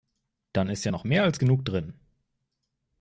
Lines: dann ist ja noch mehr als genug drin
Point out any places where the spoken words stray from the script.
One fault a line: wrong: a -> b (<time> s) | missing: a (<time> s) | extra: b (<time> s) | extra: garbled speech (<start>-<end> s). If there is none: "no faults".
no faults